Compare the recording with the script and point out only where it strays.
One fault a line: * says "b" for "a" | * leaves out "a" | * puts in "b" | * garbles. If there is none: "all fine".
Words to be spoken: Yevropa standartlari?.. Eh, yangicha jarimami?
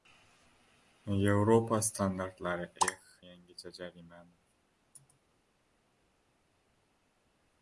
all fine